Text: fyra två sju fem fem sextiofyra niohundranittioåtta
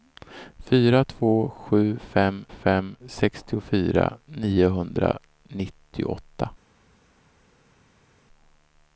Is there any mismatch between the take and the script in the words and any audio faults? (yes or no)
no